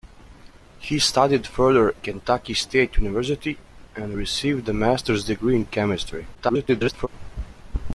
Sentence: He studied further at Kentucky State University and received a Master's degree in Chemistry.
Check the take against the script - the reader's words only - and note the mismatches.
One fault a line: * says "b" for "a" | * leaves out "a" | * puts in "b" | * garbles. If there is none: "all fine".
* leaves out "at"
* garbles